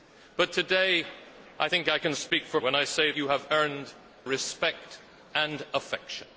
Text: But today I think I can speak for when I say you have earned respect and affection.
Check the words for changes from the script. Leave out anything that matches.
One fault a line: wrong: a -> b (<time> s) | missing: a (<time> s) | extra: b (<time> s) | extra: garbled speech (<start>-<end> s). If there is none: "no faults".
no faults